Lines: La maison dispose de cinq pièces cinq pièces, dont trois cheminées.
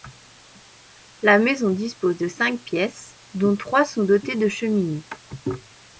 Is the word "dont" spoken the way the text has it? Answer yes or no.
no